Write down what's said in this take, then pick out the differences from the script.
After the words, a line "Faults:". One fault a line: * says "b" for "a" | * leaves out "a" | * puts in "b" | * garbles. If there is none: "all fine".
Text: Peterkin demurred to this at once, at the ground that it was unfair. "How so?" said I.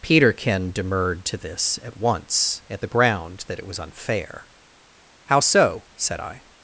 Peterkin demurred to this at once, at the ground that it was unfair. "How so?" said I.
Faults:
all fine